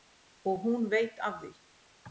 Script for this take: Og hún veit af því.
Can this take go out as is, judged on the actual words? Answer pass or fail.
pass